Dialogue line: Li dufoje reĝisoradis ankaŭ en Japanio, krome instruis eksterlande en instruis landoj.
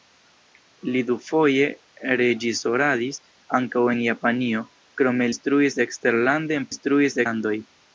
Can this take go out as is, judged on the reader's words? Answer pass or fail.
pass